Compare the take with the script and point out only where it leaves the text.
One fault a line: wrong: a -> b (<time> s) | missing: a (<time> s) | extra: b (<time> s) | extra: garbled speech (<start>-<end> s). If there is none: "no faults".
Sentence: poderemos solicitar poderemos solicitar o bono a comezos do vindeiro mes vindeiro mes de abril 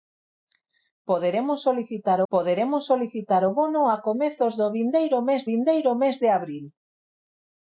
no faults